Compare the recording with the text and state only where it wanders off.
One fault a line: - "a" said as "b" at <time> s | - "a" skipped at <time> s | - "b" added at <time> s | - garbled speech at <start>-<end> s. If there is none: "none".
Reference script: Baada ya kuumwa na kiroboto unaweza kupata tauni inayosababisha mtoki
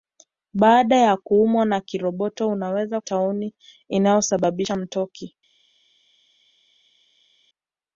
- "kupata" skipped at 3.0 s